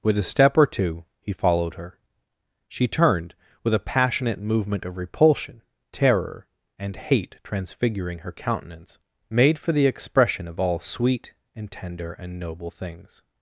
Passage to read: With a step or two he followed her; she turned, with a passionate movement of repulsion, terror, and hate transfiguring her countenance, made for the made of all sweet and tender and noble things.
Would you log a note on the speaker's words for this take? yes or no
yes